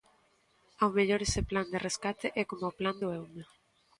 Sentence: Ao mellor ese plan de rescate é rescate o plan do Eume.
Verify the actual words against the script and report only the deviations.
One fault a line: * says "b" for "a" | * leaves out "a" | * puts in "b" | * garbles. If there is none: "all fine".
* says "coma" for "rescate"